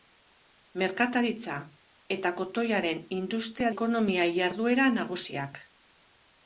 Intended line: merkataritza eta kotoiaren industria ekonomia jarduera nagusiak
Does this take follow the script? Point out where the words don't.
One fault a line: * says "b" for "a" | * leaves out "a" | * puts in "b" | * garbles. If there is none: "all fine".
all fine